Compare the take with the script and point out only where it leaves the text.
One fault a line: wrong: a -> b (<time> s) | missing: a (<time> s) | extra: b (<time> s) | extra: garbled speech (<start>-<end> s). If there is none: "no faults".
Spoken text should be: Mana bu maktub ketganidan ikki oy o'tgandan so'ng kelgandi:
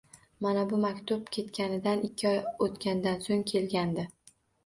no faults